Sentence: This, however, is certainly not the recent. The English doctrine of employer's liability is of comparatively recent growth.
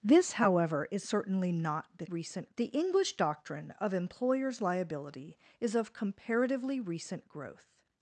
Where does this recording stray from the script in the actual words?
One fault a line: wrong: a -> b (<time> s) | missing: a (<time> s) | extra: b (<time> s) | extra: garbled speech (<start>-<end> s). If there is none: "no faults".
no faults